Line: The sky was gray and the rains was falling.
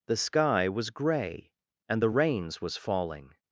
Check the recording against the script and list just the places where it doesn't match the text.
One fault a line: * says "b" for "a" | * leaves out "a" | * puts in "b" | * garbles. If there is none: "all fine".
all fine